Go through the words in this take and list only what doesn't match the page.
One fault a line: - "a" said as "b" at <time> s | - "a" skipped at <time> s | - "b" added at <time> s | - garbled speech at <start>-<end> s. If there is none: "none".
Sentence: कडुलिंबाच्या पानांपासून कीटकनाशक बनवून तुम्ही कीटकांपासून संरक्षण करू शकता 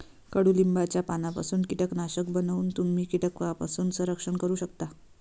none